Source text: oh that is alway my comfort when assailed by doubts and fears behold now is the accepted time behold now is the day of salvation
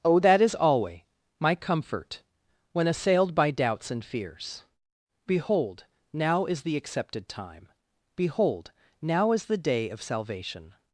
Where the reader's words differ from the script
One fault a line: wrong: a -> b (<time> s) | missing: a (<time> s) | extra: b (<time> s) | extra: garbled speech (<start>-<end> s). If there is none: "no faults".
no faults